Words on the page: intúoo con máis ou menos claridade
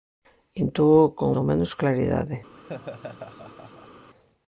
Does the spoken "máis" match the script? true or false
false